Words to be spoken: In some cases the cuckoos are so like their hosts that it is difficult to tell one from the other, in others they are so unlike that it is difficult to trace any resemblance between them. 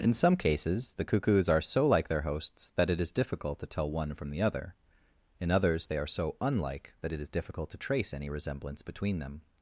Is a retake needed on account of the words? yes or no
no